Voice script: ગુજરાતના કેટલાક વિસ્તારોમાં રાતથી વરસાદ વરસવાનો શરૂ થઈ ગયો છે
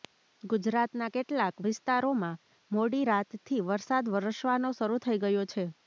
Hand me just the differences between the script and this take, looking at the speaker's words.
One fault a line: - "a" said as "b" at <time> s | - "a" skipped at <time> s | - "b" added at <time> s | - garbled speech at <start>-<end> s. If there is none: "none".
- "મોડી" added at 2.7 s